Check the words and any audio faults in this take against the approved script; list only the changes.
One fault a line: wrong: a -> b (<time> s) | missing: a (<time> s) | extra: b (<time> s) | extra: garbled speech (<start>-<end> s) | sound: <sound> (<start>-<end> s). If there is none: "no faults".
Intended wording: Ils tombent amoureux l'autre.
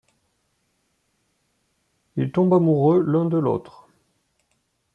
extra: l'un de (3.0 s)